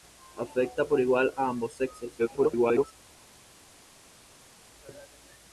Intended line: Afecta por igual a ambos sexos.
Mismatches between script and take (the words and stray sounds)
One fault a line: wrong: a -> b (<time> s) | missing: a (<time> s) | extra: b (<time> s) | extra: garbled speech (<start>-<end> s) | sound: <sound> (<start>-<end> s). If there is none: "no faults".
extra: garbled speech (2.2-2.9 s)